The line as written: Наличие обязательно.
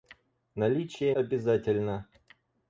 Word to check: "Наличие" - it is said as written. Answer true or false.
true